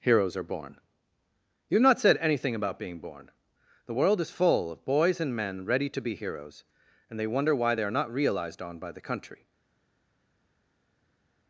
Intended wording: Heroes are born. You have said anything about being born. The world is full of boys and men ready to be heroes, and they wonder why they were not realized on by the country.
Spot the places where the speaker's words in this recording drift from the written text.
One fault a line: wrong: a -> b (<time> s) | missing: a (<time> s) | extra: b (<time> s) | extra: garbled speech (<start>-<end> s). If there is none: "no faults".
extra: not (1.8 s)
wrong: were -> are (7.8 s)